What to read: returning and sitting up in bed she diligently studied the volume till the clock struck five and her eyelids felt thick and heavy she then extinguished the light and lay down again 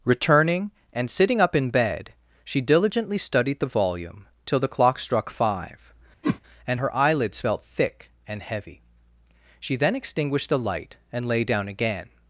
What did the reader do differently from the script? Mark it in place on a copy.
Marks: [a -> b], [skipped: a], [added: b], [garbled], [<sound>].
returning and sitting up in bed she diligently studied the volume till the clock struck five [whoosh] and her eyelids felt thick and heavy she then extinguished the light and lay down again